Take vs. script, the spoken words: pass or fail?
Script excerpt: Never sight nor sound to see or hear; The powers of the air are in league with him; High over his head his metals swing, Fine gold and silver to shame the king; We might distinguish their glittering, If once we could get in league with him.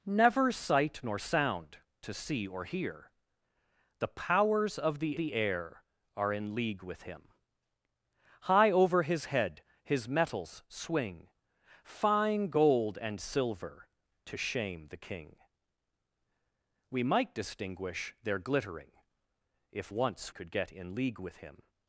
fail